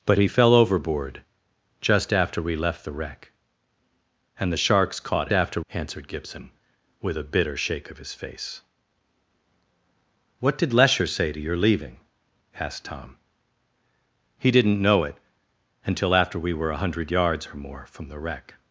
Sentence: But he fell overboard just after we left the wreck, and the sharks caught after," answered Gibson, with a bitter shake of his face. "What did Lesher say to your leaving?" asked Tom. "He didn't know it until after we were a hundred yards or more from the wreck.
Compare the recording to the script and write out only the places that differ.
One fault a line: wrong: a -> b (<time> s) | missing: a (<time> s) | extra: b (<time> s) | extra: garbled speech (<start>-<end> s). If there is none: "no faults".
no faults